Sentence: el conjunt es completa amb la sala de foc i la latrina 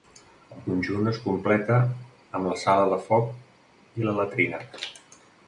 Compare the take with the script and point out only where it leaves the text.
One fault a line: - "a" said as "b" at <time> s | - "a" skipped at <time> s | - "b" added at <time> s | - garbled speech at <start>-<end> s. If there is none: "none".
none